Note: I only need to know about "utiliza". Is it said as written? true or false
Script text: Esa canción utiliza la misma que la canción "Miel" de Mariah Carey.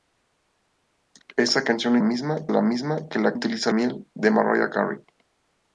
false